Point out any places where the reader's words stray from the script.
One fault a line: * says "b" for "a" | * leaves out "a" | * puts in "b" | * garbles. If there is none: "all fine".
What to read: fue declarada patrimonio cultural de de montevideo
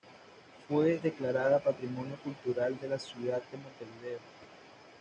* puts in "la ciudad"